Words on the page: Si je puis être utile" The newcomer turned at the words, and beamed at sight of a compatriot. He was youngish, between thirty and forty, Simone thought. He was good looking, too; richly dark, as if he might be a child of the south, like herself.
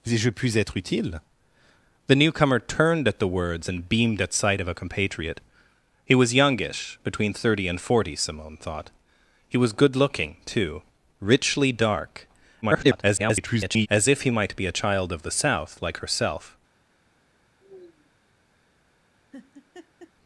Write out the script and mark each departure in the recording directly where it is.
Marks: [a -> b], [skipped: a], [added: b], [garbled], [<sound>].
Si je puis être utile" The newcomer turned at the words, and beamed at sight of a compatriot. He was youngish, between thirty and forty, Simone thought. He was good looking, too; richly dark, [garbled] as if he might be a child of the south, like herself. [sigh] [laugh]